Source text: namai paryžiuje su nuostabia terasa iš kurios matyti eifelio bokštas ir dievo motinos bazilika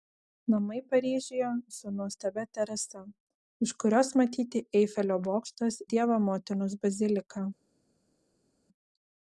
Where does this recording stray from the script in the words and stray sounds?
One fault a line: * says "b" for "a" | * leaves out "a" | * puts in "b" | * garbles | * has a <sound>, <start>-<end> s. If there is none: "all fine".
* leaves out "ir"